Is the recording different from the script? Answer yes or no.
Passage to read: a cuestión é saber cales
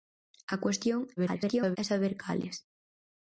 yes